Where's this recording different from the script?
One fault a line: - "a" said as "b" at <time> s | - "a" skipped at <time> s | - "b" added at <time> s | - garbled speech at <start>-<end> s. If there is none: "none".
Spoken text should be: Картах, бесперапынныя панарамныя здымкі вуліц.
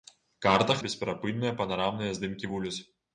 none